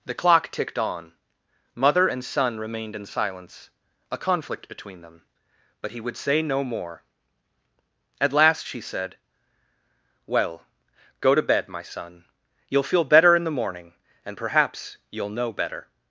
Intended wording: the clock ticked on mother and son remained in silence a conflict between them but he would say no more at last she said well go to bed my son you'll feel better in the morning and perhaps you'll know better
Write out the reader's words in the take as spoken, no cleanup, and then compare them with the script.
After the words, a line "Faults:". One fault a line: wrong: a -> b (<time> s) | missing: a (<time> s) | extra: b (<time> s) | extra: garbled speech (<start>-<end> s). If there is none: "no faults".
the clock ticked on mother and son remained in silence a conflict between them but he would say no more at last she said well go to bed my son you'll feel better in the morning and perhaps you'll know better
Faults:
no faults